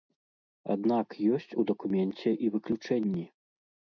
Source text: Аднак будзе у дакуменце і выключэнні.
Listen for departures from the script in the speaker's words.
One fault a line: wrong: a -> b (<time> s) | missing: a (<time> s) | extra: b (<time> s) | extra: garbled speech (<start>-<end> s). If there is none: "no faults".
wrong: будзе -> ёсць (1.4 s)